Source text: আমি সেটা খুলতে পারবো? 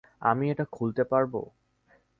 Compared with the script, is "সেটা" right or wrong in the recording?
wrong